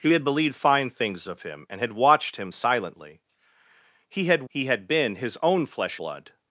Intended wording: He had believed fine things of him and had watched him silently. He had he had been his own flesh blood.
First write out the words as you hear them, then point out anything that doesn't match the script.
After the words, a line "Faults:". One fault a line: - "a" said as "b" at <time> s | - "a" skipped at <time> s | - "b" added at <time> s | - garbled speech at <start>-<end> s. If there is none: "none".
He had believed fine things of him and had watched him silently. He had he had been his own flesh blood.
Faults:
none